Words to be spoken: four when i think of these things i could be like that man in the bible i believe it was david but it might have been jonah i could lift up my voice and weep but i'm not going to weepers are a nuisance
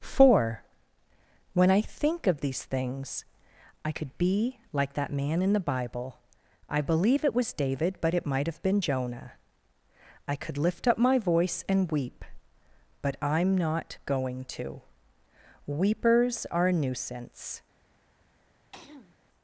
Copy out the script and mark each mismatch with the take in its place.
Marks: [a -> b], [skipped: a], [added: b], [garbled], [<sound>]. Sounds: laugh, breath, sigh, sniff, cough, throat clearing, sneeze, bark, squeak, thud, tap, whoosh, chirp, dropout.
four when i think of these things i could be like that man in the bible i believe it was david but it might have been jonah i could lift up my voice and weep but i'm not going to weepers are a nuisance [throat clearing]